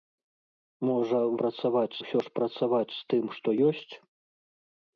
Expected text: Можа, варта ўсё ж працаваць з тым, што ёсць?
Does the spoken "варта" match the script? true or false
false